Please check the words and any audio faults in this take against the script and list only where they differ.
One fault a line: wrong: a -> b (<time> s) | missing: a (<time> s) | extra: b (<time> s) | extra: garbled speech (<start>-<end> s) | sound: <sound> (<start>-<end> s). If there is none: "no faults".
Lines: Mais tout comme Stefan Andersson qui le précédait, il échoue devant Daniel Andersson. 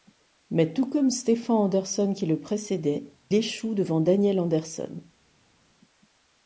missing: il (3.1 s)